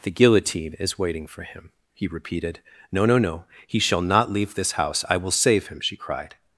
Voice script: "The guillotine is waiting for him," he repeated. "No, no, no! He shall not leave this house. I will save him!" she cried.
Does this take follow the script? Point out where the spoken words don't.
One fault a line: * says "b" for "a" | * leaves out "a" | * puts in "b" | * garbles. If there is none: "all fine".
all fine